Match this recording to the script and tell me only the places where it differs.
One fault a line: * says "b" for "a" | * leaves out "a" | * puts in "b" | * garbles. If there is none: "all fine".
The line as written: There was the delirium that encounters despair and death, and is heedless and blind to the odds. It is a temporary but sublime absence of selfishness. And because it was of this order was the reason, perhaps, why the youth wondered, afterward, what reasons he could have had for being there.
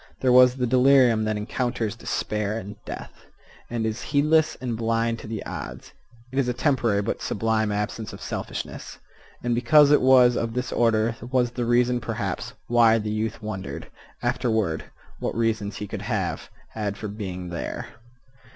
all fine